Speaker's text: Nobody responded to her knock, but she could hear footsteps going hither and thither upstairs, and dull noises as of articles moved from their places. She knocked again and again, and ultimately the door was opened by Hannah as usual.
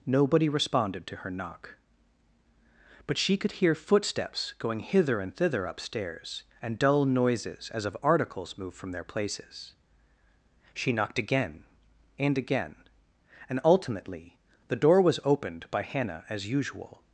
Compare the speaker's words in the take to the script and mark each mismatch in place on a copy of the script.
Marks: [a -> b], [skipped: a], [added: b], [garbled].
Nobody responded to her knock, but she could hear footsteps going hither and thither upstairs, and dull noises as of articles moved from their places. She knocked again and again, and ultimately the door was opened by Hannah as usual.